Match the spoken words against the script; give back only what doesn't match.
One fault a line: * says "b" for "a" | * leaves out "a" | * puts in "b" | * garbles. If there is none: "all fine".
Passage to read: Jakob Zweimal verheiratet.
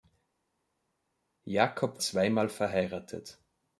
all fine